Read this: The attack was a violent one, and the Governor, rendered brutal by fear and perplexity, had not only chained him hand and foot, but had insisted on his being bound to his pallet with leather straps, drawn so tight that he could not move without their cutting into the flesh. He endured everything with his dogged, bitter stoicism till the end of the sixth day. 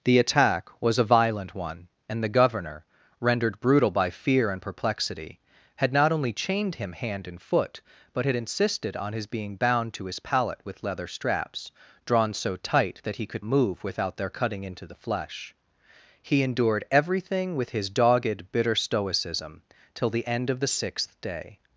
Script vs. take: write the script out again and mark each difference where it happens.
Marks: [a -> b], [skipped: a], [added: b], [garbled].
The attack was a violent one, and the Governor, rendered brutal by fear and perplexity, had not only chained him hand and foot, but had insisted on his being bound to his pallet with leather straps, drawn so tight that he could [skipped: not] move without their cutting into the flesh. He endured everything with his dogged, bitter stoicism till the end of the sixth day.